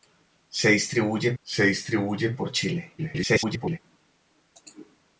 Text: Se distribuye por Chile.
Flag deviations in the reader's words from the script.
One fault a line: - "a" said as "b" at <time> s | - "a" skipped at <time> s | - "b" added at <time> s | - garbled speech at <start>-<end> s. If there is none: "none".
- "se distribuye" added at 1.4 s
- garbled speech at 3.0-3.8 s